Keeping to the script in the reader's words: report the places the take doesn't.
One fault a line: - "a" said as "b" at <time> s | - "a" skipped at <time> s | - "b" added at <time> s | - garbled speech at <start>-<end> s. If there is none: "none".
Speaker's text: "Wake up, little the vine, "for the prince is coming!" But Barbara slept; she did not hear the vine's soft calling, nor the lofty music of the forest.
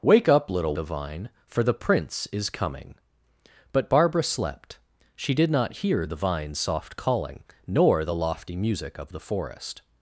none